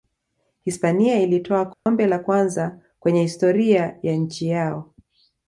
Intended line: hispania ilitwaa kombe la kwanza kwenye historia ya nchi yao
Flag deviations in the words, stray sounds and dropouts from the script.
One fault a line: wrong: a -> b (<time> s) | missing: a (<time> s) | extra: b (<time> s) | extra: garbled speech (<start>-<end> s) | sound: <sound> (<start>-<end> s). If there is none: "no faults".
sound: dropout (1.7-1.9 s)